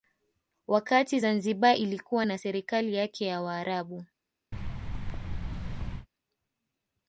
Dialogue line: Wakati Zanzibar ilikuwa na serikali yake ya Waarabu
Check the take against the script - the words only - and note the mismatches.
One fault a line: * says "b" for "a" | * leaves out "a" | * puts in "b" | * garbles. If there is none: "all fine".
all fine